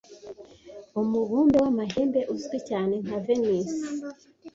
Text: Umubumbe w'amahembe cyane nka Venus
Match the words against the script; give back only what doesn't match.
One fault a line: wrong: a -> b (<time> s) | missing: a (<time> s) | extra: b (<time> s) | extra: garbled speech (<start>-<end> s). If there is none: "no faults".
extra: uzwi (2.3 s)